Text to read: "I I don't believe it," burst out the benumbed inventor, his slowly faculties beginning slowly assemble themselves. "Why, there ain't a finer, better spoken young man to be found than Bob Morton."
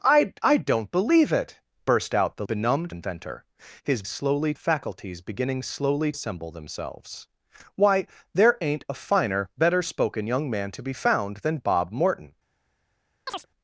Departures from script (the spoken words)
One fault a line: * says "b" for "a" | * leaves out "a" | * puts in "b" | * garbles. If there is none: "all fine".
all fine